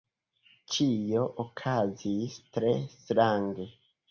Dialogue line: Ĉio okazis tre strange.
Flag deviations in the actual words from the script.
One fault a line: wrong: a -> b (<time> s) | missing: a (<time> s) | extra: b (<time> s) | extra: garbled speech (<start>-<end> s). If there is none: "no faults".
no faults